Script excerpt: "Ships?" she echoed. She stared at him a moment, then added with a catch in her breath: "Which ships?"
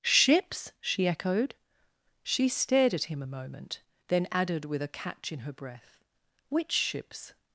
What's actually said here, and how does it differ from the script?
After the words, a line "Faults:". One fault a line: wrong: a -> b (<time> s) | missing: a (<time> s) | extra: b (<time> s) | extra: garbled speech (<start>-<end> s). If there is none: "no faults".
"Ships?" she echoed. She stared at him a moment, then added with a catch in her breath: "Which ships?"
Faults:
no faults